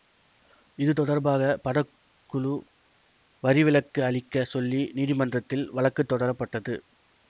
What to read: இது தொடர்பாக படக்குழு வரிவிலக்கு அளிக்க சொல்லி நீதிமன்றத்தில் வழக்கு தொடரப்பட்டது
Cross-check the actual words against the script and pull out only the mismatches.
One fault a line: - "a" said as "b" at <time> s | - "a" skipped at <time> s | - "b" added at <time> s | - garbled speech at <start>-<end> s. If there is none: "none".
none